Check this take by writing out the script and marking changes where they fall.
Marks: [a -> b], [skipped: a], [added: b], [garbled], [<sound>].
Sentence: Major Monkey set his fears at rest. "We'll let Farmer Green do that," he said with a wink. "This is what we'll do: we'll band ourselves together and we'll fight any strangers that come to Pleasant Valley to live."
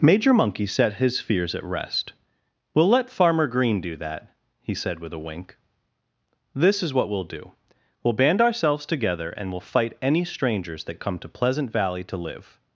Major Monkey set his fears at rest. "We'll let Farmer Green do that," he said with a wink. "This is what we'll do: we'll band ourselves together and we'll fight any strangers that come to Pleasant Valley to live."